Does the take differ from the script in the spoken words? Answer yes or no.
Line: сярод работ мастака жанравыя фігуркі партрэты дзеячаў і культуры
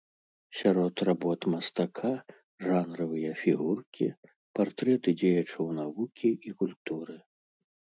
yes